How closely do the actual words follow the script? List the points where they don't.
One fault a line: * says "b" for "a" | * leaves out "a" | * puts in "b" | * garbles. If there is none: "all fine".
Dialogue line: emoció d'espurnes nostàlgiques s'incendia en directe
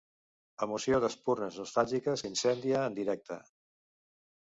all fine